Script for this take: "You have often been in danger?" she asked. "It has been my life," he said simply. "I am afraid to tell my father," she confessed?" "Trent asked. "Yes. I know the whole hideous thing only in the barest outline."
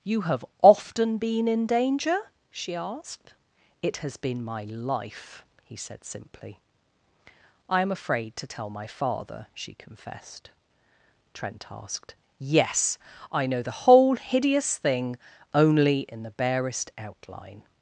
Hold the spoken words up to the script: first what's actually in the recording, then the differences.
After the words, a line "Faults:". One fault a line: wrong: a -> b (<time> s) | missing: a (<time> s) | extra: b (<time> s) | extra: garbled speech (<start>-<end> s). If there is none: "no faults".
"You have often been in danger?" she asked. "It has been my life," he said simply. "I am afraid to tell my father," she confessed?" "Trent asked. "Yes. I know the whole hideous thing only in the barest outline."
Faults:
no faults